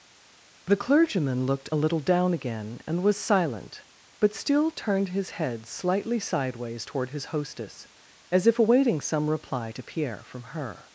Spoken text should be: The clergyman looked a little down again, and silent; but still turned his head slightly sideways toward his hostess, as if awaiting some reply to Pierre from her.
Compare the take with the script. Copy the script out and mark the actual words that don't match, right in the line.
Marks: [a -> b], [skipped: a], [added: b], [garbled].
The clergyman looked a little down again, and [added: was] silent; but still turned his head slightly sideways toward his hostess, as if awaiting some reply to Pierre from her.